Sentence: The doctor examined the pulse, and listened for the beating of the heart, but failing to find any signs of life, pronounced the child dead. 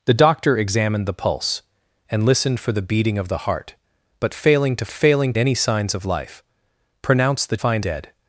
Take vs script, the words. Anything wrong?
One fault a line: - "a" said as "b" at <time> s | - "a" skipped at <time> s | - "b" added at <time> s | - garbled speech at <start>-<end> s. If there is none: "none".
- "find" said as "failing" at 4.9 s
- "child" said as "find" at 7.5 s